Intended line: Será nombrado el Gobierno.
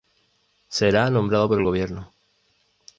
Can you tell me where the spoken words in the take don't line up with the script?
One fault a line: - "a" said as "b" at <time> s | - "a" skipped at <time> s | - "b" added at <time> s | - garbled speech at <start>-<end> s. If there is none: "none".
- "por" added at 1.4 s